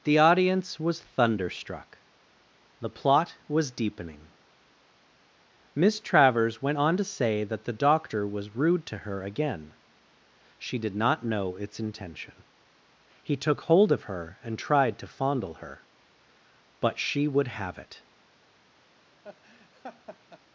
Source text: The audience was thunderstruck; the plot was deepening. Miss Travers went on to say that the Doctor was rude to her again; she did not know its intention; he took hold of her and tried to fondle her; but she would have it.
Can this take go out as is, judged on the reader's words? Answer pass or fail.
pass